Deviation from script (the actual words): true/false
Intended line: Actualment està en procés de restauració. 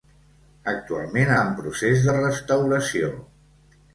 true